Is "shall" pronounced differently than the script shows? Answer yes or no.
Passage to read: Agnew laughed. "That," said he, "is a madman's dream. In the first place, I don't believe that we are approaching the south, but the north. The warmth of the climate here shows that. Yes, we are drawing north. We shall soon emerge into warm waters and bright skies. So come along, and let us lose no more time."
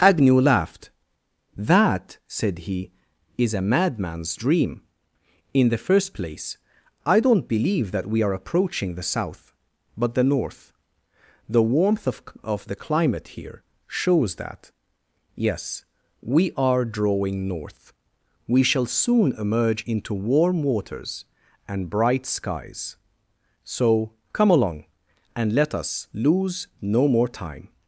no